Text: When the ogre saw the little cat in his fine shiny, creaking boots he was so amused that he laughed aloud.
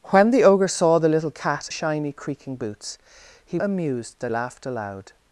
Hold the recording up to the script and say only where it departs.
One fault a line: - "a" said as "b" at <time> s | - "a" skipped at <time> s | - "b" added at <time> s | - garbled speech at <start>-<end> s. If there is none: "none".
- "in his fine" skipped at 1.7 s
- "was so" skipped at 3.6 s
- "he" skipped at 4.3 s